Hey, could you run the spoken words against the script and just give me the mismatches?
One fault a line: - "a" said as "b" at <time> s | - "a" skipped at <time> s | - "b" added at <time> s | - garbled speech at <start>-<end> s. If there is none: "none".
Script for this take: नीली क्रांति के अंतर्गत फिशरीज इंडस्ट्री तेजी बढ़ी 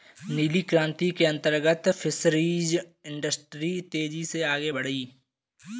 - "से आगे" added at 4.2 s